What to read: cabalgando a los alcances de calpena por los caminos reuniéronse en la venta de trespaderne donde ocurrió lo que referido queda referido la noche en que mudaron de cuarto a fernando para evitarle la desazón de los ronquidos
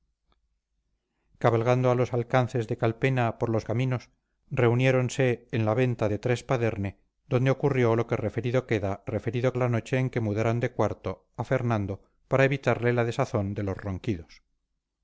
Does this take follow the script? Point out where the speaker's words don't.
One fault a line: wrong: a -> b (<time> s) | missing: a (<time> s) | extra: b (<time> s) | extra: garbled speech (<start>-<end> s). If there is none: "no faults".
no faults